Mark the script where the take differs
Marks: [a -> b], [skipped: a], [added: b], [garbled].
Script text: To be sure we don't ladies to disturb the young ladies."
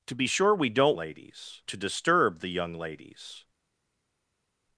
To be sure we don't ladies to disturb the young ladies."